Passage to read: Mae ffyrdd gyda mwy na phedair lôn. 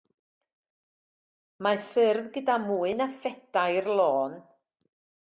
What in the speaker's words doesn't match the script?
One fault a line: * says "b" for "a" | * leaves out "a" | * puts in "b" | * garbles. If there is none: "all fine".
all fine